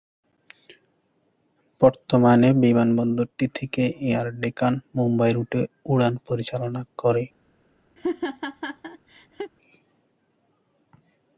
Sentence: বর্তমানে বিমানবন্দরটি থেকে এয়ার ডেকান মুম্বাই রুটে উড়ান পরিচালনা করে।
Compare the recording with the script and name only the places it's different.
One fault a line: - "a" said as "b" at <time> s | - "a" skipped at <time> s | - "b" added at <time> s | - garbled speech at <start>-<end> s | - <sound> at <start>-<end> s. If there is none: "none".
- laugh at 8.0-9.5 s